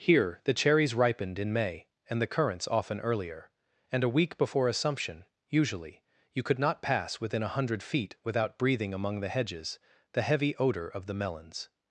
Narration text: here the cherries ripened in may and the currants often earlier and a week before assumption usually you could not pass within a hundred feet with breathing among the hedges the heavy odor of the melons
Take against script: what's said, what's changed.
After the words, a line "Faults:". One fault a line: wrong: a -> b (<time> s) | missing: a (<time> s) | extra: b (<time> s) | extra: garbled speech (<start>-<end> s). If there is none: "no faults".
here the cherries ripened in may and the currants often earlier and a week before assumption usually you could not pass within a hundred feet without breathing among the hedges the heavy odor of the melons
Faults:
wrong: with -> without (8.2 s)